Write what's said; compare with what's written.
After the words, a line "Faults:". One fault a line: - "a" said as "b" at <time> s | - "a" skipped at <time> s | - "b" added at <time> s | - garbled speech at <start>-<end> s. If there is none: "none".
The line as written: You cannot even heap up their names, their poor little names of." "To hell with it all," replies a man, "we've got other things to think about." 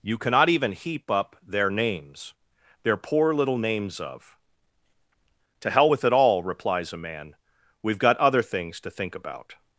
You cannot even heap up their names, their poor little names of." "To hell with it all," replies a man, "we've got other things to think about."
Faults:
none